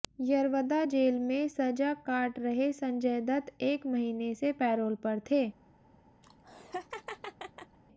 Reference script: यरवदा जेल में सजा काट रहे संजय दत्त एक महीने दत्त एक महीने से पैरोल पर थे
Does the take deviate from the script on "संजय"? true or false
false